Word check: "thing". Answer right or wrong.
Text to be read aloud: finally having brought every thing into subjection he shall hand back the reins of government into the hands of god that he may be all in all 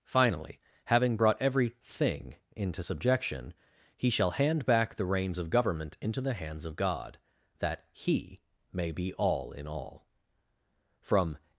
right